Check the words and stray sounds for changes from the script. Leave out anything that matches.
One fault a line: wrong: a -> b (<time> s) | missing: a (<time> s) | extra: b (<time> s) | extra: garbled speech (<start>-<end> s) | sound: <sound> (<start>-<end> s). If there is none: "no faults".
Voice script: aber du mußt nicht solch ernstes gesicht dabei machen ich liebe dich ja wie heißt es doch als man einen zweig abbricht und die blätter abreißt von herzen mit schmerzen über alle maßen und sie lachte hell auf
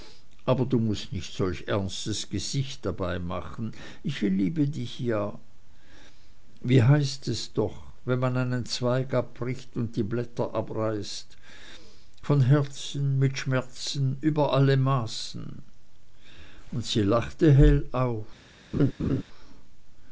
wrong: als -> wenn (8.1 s)
sound: laugh (18.7-19.2 s)